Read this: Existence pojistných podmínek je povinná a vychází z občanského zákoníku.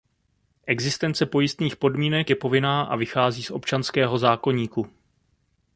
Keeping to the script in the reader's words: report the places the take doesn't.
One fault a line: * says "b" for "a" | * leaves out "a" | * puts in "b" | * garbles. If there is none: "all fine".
all fine